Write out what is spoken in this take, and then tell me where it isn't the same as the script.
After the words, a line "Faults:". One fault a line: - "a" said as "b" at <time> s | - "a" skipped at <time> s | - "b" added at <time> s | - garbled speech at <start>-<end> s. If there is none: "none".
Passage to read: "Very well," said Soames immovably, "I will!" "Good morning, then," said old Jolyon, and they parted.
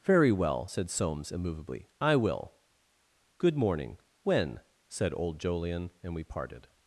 "Very well," said Soames immovably, "I will!" "Good morning, when," said old Jolyon, and we parted.
Faults:
- "then" said as "when" at 4.2 s
- "they" said as "we" at 6.1 s